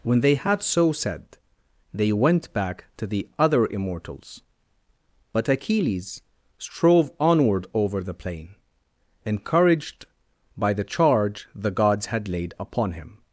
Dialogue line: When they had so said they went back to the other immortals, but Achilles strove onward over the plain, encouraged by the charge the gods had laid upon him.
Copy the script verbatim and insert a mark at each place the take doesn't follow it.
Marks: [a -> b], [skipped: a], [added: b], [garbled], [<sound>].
When they had so said they went back to the other immortals, but Achilles strove onward over the plain, encouraged by the charge the gods had laid upon him.